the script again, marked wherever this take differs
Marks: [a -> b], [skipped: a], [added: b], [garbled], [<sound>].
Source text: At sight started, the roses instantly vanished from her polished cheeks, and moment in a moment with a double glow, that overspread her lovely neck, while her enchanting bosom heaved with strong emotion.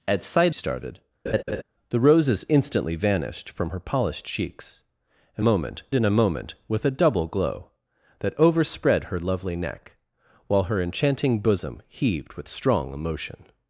At sight started, [laugh] the roses instantly vanished from her polished cheeks, and moment in a moment with a double glow, that overspread her lovely neck, while her enchanting bosom heaved with strong emotion.